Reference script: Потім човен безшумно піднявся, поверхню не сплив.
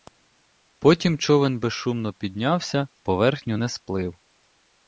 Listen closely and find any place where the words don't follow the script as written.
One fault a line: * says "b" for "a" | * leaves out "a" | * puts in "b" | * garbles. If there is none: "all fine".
all fine